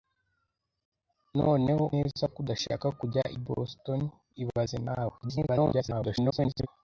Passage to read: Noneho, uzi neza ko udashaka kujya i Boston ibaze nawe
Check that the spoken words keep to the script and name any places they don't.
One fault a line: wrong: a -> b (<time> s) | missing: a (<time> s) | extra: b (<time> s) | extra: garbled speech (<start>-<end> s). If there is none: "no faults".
missing: uzi (1.8 s)
extra: garbled speech (5.2-6.7 s)